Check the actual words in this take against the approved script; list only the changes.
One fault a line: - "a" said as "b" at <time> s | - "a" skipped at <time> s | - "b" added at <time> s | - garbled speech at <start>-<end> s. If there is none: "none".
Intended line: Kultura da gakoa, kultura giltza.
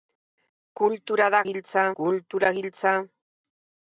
- "gakoa" said as "giltza" at 1.5 s